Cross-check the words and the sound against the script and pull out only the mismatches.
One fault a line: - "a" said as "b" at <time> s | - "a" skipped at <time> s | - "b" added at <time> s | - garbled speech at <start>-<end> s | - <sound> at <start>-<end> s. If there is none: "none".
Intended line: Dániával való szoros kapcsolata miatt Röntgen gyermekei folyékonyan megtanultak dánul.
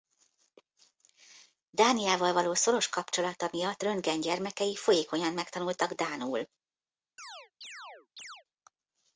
- chirp at 7.2-8.4 s